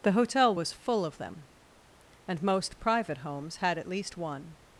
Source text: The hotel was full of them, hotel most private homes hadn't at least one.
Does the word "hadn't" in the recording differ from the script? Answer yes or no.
yes